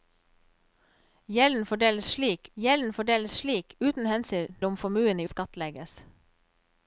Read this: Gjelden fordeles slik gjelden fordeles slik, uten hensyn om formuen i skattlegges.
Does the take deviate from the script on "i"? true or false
false